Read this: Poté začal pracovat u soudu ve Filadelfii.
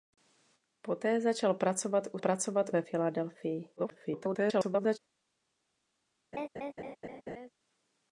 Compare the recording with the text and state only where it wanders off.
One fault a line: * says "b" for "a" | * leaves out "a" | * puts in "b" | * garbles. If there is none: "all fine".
* says "pracovat" for "soudu"
* garbles